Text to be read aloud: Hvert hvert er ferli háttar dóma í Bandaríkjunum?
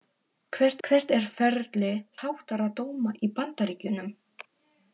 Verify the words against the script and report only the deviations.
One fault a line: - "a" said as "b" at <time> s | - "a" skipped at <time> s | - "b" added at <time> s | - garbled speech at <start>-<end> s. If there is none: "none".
none